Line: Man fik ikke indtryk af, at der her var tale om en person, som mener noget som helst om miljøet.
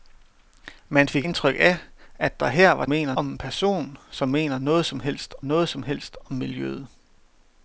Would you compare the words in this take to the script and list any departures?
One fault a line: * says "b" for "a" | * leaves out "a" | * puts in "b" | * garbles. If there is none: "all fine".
* leaves out "ikke"
* says "mener" for "tale"
* puts in "noget som helst"